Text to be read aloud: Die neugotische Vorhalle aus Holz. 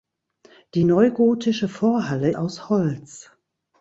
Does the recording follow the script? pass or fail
pass